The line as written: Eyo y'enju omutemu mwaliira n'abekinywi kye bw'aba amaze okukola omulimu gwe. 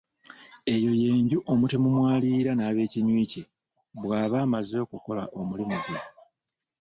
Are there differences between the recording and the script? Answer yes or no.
no